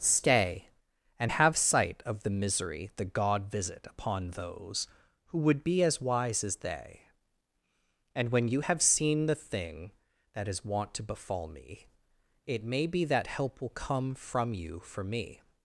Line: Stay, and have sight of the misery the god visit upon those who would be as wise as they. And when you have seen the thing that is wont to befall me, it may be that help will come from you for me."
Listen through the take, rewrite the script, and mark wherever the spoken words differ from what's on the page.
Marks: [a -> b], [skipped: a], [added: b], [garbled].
Stay, and have sight of the misery the god visit upon those who would be as wise as they. And when you have seen the thing that is wont to befall me, it may be that help will come from you for me."